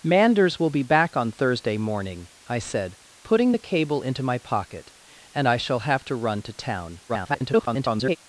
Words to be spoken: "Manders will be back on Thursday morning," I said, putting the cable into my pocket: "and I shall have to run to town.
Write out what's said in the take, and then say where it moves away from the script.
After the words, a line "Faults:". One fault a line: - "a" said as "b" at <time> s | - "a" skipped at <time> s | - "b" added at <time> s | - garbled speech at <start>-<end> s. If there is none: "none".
"Manders will be back on Thursday morning," I said, putting the cable into my pocket: "and I shall have to run to town. [garbled]
Faults:
- garbled speech at 7.1-8.2 s